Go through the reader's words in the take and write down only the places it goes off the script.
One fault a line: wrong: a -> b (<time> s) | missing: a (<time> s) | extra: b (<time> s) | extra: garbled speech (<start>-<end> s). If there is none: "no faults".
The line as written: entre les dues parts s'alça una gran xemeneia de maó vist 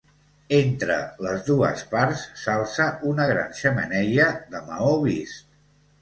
no faults